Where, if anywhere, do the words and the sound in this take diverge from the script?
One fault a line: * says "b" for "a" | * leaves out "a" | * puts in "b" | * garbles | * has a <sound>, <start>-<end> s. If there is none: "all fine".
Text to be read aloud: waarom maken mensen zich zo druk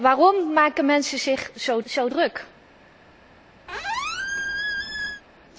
* puts in "zo"
* has a squeak, 3.7-5.2 s